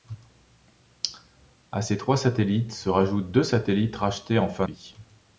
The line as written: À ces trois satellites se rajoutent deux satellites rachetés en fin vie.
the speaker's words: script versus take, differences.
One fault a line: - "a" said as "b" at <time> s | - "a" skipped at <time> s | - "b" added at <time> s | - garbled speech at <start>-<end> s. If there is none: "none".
none